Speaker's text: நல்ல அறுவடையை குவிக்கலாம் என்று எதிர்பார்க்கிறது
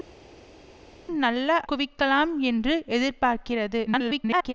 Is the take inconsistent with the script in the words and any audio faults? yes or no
yes